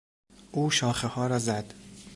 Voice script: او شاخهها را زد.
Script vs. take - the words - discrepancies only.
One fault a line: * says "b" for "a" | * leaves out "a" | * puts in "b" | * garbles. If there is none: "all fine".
all fine